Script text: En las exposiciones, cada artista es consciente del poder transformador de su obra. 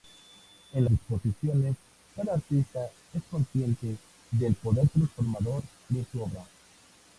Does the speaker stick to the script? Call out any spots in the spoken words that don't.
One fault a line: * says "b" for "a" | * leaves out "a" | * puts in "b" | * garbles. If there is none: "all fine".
* leaves out "las"